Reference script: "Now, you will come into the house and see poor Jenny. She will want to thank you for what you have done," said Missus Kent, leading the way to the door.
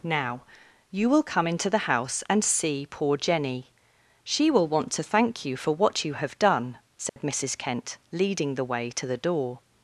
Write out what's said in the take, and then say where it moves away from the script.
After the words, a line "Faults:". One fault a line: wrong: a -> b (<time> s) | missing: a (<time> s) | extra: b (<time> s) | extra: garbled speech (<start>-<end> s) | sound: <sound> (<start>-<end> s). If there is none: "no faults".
"Now, you will come into the house and see poor Jenny. She will want to thank you for what you have done," said Missus Kent, leading the way to the door.
Faults:
sound: dropout (7.1-7.2 s)